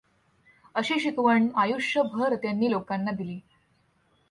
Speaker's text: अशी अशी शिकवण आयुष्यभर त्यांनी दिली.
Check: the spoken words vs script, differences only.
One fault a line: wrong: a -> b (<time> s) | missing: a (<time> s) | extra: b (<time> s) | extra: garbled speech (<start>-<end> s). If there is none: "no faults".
missing: अशी (1.0 s)
extra: लोकांना (2.7 s)